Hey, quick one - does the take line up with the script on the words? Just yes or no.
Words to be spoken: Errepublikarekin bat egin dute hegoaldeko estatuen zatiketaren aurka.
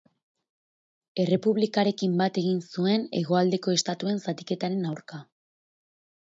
no